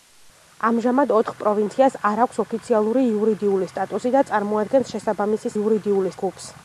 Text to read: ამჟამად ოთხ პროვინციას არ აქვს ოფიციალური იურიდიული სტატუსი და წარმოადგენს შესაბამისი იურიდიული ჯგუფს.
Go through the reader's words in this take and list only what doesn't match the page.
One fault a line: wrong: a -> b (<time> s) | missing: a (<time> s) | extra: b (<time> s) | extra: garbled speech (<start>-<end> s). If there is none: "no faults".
no faults